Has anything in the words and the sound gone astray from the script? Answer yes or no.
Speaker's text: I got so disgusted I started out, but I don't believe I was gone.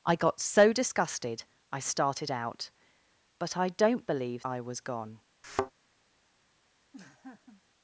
yes